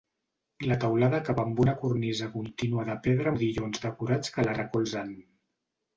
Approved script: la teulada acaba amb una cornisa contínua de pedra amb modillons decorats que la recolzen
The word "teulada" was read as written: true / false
true